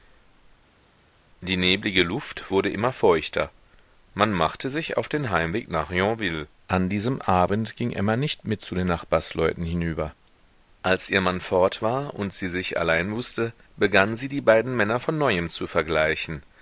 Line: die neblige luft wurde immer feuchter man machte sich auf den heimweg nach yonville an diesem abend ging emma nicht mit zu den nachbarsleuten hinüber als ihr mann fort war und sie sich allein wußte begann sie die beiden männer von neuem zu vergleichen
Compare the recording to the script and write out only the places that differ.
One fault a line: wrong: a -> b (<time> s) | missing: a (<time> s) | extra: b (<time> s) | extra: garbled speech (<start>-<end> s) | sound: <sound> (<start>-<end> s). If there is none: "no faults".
no faults